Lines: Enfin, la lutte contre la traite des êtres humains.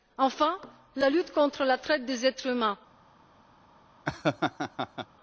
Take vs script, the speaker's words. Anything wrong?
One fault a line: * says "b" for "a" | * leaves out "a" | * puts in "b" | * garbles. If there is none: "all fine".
all fine